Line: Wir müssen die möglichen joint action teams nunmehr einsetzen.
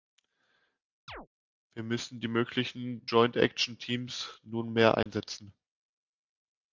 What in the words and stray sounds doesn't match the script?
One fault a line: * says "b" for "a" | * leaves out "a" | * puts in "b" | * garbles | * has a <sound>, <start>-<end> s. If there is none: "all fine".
* has a chirp, 1.1-1.3 s
* has a dropout, 5.0-5.1 s